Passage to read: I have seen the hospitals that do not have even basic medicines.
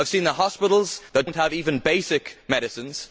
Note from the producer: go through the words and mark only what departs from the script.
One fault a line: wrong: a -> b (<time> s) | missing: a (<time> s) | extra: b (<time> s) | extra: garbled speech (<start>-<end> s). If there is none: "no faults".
missing: do (1.3 s)